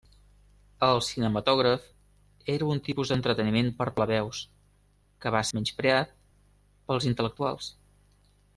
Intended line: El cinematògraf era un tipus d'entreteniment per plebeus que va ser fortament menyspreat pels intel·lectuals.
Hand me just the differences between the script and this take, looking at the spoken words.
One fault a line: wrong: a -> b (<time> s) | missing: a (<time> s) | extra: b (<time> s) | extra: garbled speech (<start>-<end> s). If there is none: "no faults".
missing: ser fortament (5.4 s)